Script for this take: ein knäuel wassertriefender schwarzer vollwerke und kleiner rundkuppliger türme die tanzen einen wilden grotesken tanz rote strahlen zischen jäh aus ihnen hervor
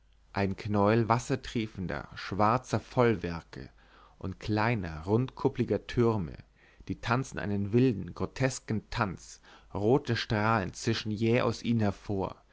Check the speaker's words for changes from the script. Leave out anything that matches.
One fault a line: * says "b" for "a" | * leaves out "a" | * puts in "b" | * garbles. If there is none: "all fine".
all fine